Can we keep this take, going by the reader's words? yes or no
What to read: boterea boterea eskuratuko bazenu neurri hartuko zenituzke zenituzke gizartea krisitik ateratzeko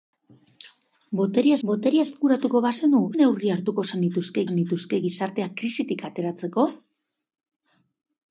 yes